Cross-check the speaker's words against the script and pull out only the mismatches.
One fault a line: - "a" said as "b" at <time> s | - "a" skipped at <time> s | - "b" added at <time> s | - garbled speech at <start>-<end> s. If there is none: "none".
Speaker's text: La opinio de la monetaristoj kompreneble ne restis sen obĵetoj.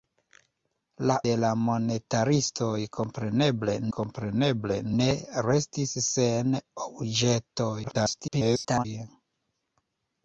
- "opinio" skipped at 1.2 s
- "kompreneble" added at 4.0 s
- garbled speech at 7.8-8.9 s